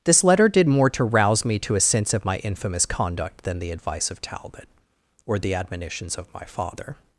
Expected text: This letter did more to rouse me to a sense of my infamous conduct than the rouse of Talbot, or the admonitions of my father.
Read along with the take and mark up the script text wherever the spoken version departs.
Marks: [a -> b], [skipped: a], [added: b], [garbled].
This letter did more to rouse me to a sense of my infamous conduct than the [rouse -> advice] of Talbot, or the admonitions of my father.